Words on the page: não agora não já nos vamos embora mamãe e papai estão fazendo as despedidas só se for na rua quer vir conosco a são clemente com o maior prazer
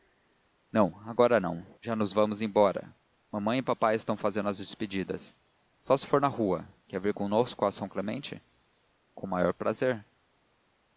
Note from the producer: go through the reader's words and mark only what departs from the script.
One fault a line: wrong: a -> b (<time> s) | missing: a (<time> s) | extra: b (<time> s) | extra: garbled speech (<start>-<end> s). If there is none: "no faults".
no faults